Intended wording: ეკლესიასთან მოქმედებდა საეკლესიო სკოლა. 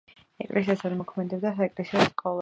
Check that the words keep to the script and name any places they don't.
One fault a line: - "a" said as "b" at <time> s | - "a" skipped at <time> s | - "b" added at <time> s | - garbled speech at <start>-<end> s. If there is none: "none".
none